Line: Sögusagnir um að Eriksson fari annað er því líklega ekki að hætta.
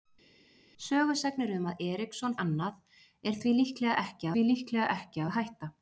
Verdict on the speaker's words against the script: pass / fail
fail